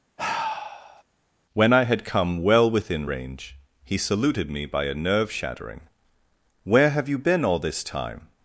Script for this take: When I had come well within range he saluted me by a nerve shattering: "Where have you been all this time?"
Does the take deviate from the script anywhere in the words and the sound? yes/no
yes